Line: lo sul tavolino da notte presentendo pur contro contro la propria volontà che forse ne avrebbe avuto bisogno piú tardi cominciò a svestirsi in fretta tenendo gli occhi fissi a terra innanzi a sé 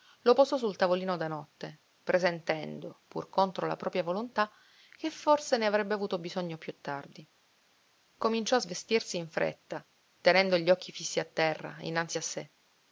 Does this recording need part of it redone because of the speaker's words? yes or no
yes